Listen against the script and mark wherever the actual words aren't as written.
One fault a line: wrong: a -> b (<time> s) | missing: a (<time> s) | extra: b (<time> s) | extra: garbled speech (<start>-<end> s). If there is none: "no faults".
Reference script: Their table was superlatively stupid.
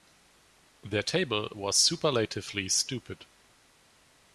no faults